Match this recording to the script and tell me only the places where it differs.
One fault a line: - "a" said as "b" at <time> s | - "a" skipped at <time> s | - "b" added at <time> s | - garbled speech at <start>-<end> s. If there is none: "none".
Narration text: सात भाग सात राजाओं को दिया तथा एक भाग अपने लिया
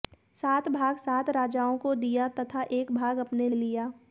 none